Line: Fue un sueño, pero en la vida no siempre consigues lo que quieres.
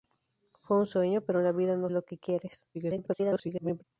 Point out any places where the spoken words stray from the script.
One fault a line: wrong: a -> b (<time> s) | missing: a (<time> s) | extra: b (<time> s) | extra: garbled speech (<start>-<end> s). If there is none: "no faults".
missing: siempre consigues (1.9 s)
extra: garbled speech (2.7-3.8 s)